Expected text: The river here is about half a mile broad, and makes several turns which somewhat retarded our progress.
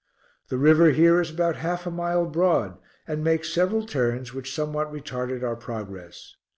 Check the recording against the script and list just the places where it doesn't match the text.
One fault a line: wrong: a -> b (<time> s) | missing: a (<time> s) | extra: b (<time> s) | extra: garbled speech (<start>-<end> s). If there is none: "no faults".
no faults